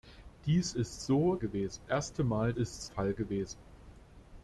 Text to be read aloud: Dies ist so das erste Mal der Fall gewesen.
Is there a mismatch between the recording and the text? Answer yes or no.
yes